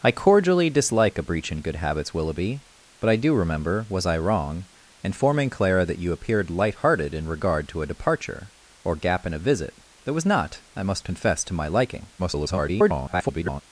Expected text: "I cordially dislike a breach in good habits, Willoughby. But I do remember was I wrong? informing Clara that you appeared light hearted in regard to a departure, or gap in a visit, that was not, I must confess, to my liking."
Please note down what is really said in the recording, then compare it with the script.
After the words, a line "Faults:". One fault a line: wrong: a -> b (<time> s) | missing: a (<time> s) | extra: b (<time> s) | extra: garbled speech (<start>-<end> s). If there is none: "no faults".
"I cordially dislike a breach in good habits, Willoughby. But I do remember was I wrong? informing Clara that you appeared light hearted in regard to a departure, or gap in a visit, that was not, I must confess, to my liking." [garbled]
Faults:
extra: garbled speech (12.2-13.6 s)